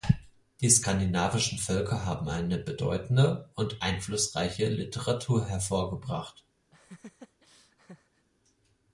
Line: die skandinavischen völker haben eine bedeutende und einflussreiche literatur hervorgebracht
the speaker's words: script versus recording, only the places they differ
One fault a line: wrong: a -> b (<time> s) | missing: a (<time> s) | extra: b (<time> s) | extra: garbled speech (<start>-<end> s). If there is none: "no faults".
no faults